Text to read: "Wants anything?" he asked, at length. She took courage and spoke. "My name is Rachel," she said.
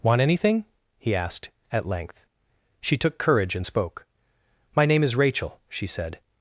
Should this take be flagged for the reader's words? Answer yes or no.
yes